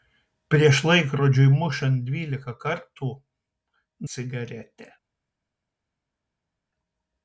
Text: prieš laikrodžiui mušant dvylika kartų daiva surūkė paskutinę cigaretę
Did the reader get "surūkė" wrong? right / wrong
wrong